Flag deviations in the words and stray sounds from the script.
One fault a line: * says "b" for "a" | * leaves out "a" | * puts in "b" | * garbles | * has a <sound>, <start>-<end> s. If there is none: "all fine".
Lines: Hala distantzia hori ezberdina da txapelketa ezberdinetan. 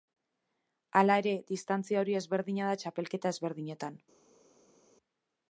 * puts in "ere"